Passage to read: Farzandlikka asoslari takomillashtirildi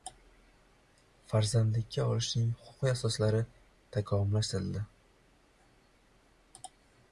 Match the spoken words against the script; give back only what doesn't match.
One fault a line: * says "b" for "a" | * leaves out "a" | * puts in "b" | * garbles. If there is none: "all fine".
* puts in "olishning huquqiy"